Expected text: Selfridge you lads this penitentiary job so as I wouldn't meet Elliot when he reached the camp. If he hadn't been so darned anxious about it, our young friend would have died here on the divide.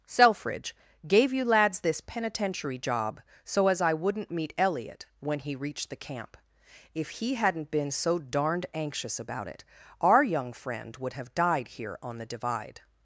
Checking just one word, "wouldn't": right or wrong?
right